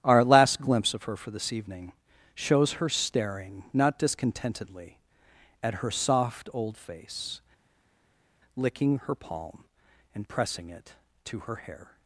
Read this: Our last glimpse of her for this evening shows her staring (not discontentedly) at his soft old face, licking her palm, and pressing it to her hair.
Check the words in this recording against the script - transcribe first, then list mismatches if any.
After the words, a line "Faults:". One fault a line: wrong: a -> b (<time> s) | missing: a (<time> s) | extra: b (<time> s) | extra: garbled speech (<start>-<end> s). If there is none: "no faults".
Our last glimpse of her for this evening shows her staring (not discontentedly) at her soft old face, licking her palm, and pressing it to her hair.
Faults:
wrong: his -> her (5.7 s)